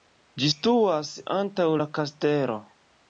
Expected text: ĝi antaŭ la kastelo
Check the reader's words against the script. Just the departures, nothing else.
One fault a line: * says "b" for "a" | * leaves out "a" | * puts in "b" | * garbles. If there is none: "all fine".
* puts in "situas"